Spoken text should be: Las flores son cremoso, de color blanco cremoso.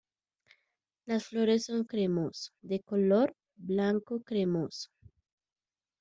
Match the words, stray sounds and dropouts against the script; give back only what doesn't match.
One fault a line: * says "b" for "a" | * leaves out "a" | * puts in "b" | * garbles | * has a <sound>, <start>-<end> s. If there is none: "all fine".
all fine